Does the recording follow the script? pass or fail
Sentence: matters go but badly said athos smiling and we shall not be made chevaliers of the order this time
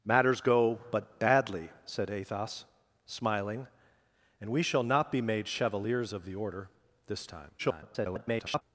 fail